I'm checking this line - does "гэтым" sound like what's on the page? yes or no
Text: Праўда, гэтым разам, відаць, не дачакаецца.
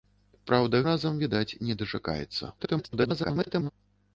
no